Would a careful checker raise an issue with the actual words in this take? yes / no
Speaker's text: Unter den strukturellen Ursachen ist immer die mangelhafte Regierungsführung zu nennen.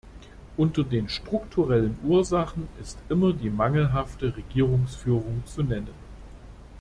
no